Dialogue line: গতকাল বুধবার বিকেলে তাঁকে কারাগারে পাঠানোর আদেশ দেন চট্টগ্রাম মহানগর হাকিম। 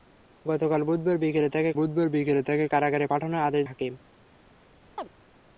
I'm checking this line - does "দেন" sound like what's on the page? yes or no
no